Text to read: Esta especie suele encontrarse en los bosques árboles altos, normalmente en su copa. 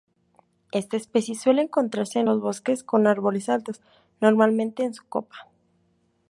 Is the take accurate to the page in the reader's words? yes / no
no